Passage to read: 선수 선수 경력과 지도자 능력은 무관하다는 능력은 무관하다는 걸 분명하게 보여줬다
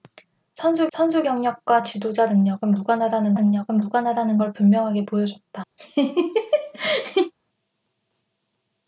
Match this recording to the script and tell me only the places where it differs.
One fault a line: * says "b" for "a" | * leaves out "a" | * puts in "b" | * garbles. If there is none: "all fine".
all fine